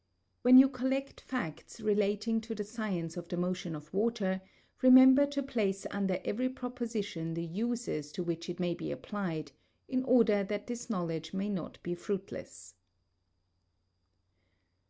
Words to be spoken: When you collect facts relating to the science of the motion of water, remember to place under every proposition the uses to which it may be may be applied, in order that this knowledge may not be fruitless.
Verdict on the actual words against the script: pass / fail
fail